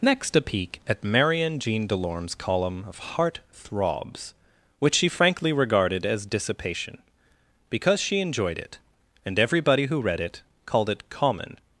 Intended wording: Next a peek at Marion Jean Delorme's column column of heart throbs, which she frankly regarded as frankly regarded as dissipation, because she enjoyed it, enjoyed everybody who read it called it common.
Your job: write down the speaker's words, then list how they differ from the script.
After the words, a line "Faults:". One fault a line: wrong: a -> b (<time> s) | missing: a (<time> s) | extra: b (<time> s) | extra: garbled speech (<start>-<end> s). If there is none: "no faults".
Next a peek at Marion Jean Delorme's column of heart throbs, which she frankly regarded as dissipation, because she enjoyed it, and everybody who read it called it common.
Faults:
missing: column (2.9 s)
missing: frankly regarded as (6.2 s)
wrong: enjoyed -> and (9.2 s)